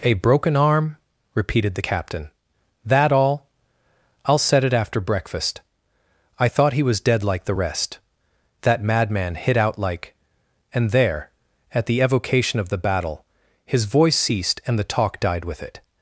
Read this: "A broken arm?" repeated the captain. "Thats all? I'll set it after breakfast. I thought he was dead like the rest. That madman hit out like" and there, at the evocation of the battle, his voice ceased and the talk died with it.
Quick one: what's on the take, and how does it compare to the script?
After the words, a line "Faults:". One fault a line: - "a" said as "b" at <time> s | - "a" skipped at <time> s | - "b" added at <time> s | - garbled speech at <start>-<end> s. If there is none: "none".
"A broken arm?" repeated the captain. "That all? I'll set it after breakfast. I thought he was dead like the rest. That madman hit out like" and there, at the evocation of the battle, his voice ceased and the talk died with it.
Faults:
- "Thats" said as "That" at 2.8 s